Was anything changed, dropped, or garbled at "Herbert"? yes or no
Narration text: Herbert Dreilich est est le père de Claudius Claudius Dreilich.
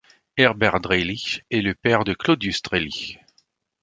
no